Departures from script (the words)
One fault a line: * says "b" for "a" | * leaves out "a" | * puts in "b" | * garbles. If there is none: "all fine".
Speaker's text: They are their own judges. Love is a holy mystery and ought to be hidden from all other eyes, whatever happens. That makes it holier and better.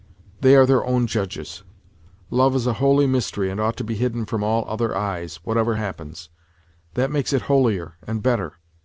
all fine